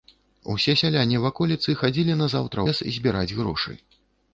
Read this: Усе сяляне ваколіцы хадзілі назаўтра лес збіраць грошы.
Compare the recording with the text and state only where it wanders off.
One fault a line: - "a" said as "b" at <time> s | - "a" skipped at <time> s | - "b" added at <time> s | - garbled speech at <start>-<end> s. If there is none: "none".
none